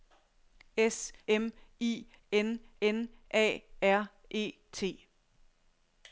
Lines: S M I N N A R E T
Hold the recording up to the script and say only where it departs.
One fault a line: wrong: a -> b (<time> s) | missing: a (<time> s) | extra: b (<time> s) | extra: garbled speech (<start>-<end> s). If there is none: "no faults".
no faults